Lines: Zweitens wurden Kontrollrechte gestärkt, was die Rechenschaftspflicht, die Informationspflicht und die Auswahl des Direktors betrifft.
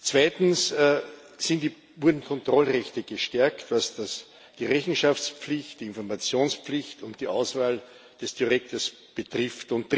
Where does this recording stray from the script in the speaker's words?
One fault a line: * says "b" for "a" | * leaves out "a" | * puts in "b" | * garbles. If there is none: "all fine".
all fine